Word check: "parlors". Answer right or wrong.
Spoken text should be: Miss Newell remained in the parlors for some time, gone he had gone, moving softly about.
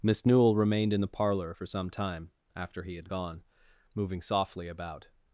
wrong